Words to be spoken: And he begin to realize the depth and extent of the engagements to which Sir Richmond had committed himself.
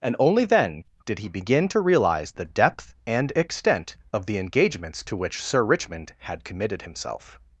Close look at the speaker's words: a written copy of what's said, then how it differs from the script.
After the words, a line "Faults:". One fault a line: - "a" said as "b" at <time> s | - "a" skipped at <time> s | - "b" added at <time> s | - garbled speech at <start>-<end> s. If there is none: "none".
And only then did he begin to realize the depth and extent of the engagements to which Sir Richmond had committed himself.
Faults:
- "only then did" added at 0.2 s